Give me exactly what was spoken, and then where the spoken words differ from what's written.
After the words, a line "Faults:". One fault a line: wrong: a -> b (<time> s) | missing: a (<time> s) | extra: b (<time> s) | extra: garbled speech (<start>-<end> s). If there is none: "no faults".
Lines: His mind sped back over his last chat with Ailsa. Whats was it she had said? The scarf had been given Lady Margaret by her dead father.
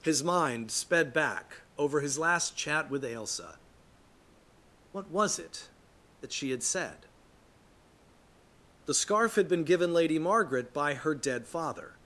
His mind sped back over his last chat with Ailsa. What was it that she had said? The scarf had been given Lady Margaret by her dead father.
Faults:
wrong: Whats -> What (4.9 s)
extra: that (6.2 s)